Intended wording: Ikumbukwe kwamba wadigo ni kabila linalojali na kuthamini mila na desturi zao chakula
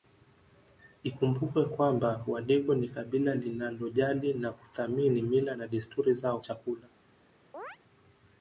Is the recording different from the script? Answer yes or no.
no